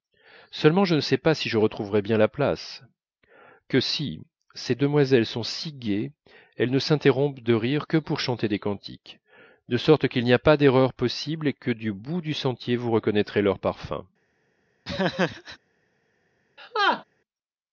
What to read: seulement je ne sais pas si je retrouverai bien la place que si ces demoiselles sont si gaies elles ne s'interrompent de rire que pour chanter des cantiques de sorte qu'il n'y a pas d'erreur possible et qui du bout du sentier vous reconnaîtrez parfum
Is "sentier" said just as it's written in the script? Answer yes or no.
yes